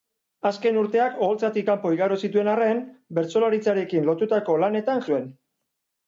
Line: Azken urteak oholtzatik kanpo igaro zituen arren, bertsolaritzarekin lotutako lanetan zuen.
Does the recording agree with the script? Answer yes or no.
yes